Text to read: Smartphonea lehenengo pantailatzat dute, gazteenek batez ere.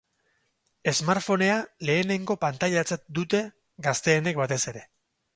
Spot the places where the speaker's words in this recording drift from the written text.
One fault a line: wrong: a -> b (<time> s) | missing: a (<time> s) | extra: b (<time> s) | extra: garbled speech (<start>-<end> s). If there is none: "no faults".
no faults